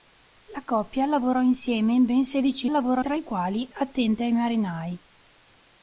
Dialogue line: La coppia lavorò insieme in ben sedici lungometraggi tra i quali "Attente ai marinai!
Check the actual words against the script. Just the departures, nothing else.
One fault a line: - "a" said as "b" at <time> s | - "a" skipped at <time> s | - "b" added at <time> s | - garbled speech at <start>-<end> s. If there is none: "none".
- "lungometraggi" said as "lavorò" at 2.7 s